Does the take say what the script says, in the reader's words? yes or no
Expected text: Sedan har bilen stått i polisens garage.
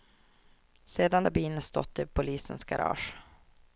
yes